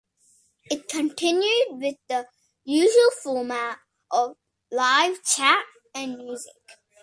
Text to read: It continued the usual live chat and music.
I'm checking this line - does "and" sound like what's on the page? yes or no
yes